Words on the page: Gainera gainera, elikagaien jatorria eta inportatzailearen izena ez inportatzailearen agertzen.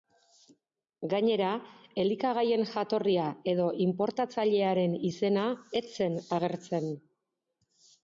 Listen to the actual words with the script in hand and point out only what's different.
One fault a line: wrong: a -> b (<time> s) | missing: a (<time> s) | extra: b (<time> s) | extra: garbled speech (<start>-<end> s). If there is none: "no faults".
missing: gainera (1.5 s)
wrong: eta -> edo (3.5 s)
wrong: inportatzailearen -> zen (6.0 s)